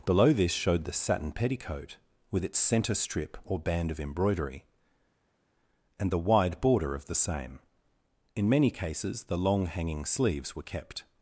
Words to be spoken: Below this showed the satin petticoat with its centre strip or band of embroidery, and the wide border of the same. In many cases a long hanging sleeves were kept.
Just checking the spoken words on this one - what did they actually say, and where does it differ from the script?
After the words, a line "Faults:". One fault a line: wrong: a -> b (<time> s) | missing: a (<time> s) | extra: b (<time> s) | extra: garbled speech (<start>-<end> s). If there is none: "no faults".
Below this showed the satin petticoat with its centre strip or band of embroidery, and the wide border of the same. In many cases the long hanging sleeves were kept.
Faults:
wrong: a -> the (9.2 s)